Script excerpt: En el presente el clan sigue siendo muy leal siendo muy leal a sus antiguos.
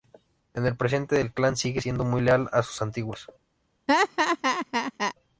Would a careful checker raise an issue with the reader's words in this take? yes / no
yes